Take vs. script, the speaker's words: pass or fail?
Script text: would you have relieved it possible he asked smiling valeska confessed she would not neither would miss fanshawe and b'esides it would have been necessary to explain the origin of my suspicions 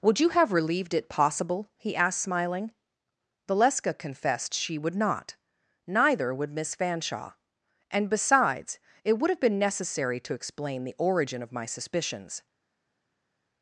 pass